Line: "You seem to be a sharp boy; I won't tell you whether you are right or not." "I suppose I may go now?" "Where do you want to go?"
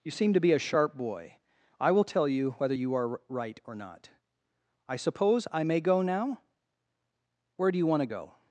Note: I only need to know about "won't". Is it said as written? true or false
false